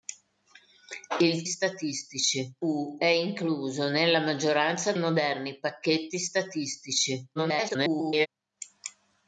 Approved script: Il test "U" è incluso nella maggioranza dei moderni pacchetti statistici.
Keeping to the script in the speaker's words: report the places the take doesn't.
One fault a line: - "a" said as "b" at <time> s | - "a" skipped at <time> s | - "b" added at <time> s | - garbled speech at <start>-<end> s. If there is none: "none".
- "test" said as "statistici" at 1.4 s
- "dei" skipped at 4.9 s
- garbled speech at 7.4-8.3 s